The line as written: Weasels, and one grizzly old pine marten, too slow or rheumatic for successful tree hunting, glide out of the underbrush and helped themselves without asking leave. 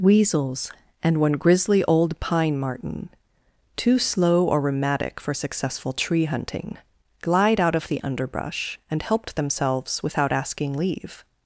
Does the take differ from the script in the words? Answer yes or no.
no